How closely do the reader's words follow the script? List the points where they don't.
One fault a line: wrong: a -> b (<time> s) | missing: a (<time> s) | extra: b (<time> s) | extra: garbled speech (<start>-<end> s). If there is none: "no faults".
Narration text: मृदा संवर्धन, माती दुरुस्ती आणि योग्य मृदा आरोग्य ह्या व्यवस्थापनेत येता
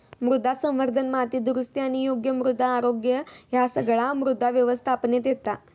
extra: सगळा मृदा (3.7 s)